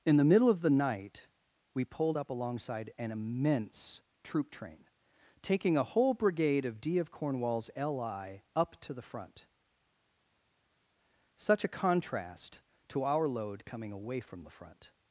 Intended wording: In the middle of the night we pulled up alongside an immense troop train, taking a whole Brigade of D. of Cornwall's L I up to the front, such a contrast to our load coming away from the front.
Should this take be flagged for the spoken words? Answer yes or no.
no